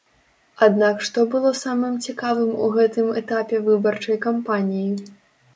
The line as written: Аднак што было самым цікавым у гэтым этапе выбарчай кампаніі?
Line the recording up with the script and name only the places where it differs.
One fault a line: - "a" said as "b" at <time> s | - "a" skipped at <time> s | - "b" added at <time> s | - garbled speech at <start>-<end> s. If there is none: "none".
none